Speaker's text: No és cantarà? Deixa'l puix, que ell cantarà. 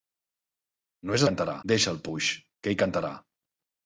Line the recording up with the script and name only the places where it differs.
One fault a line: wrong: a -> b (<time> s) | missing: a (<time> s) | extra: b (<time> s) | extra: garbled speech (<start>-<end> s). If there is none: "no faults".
no faults